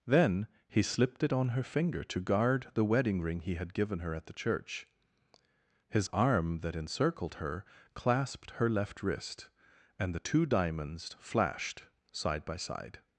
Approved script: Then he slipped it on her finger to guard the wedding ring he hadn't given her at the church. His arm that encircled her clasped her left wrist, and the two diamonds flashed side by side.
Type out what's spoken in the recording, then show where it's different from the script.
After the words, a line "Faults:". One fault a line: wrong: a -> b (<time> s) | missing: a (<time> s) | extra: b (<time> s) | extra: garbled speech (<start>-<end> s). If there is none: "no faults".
Then he slipped it on her finger to guard the wedding ring he had given her at the church. His arm that encircled her clasped her left wrist, and the two diamonds flashed side by side.
Faults:
wrong: hadn't -> had (3.5 s)